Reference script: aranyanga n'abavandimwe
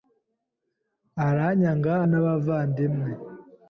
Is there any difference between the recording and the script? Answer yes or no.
no